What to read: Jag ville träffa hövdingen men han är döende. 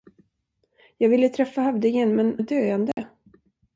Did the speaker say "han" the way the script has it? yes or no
no